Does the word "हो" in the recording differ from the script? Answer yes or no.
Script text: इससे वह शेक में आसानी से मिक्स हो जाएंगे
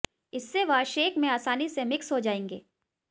no